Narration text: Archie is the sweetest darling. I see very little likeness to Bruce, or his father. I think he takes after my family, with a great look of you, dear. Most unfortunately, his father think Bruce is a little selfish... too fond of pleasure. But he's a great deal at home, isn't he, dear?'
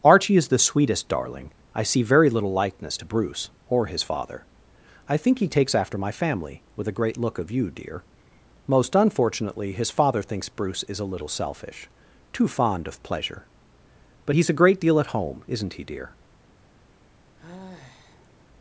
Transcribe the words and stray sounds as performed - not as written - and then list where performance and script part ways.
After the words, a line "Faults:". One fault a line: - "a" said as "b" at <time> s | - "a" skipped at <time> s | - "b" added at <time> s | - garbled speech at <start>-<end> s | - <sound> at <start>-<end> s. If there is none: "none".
Archie is the sweetest darling. I see very little likeness to Bruce, or his father. I think he takes after my family, with a great look of you, dear. Most unfortunately, his father thinks Bruce is a little selfish... too fond of pleasure. But he's a great deal at home, isn't he, dear?'
Faults:
- "think" said as "thinks" at 10.2 s
- sigh at 17.4-18.5 s